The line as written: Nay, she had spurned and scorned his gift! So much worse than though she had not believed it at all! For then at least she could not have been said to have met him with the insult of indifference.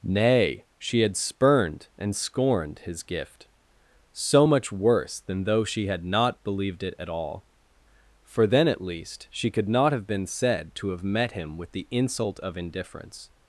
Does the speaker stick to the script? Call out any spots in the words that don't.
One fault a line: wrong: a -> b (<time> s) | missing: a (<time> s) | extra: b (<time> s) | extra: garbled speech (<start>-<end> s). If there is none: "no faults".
no faults